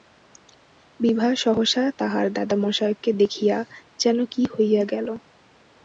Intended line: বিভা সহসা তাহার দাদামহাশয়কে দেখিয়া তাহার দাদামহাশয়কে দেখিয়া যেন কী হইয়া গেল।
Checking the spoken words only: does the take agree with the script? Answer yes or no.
no